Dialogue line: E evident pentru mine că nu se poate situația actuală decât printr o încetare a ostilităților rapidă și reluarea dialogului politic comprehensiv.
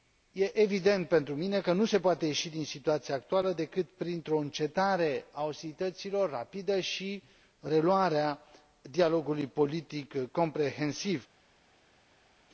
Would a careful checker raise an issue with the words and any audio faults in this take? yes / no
yes